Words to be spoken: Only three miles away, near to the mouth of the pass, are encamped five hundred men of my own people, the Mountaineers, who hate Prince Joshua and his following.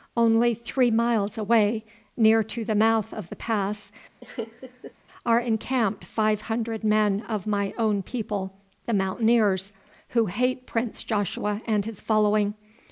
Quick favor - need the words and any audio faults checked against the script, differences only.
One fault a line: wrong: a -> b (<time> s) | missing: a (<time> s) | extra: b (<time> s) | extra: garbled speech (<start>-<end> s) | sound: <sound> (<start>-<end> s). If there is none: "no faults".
sound: laugh (4.2-4.9 s)